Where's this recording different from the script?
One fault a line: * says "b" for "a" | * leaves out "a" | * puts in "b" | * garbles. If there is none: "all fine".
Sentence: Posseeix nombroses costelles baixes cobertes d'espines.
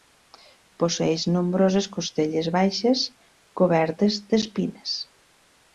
all fine